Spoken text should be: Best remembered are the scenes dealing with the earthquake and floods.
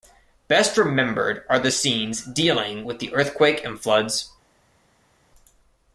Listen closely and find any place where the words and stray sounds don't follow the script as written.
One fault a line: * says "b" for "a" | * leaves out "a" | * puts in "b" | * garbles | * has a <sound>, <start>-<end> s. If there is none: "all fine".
all fine